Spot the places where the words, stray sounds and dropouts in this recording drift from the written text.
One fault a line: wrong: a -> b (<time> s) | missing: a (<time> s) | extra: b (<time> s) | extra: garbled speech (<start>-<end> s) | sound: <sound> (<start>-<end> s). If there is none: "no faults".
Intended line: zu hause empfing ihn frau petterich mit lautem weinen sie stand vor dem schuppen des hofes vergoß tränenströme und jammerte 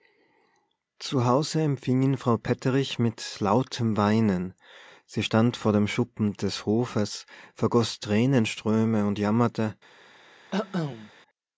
sound: cough (10.5-11.1 s)